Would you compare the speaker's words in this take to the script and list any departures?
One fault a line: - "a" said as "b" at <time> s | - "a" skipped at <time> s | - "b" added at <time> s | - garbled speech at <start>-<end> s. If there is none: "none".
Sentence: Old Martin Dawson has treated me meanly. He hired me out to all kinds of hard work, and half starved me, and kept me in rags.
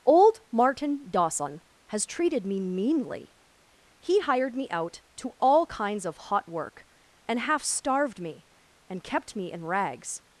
- "hard" said as "hot" at 6.2 s